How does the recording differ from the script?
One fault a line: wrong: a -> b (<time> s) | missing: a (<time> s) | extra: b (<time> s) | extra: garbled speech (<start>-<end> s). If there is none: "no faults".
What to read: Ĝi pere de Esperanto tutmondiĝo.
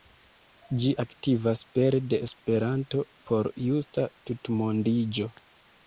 extra: aktivas (1.0 s)
extra: por justa (3.3 s)